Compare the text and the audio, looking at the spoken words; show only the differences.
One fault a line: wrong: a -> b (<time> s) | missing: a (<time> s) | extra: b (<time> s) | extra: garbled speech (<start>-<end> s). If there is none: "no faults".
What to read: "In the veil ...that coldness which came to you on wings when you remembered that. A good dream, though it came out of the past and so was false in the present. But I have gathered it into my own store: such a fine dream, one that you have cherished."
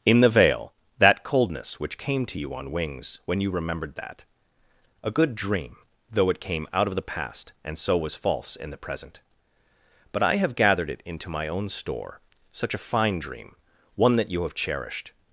no faults